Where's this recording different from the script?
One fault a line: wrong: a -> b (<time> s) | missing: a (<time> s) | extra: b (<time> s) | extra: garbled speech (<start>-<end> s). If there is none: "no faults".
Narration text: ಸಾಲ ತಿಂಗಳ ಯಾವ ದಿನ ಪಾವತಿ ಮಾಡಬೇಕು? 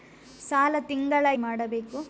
missing: ಯಾವ ದಿನ ಪಾವತಿ (1.2 s)